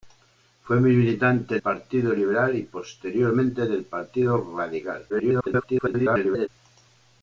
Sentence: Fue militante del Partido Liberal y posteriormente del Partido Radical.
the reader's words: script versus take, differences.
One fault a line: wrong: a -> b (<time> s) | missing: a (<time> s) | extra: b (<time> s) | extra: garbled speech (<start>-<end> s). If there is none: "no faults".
missing: del (1.6 s)
extra: garbled speech (5.1-6.5 s)